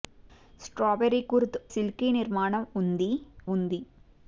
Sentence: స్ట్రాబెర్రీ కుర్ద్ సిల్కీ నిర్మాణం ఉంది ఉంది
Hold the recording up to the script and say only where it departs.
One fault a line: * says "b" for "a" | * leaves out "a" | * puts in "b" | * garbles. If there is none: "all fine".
all fine